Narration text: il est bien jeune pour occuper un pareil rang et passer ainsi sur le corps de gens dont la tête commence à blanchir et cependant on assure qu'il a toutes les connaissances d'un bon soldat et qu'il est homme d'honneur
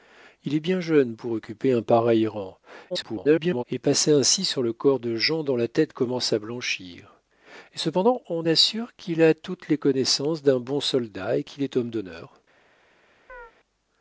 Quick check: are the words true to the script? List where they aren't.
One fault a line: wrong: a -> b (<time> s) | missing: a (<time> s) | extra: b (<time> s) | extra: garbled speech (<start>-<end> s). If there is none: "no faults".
extra: garbled speech (2.9-3.6 s)